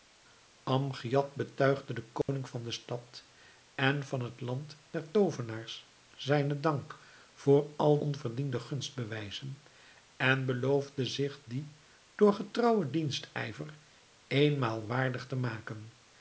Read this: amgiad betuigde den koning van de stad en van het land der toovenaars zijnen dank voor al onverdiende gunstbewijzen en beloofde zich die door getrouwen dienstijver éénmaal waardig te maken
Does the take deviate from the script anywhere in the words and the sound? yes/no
yes